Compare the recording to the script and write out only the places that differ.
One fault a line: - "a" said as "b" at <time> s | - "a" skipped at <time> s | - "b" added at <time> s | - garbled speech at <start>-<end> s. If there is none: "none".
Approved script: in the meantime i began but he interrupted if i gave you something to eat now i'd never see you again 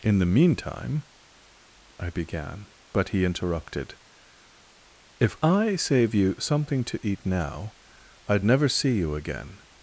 - "gave" said as "save" at 5.8 s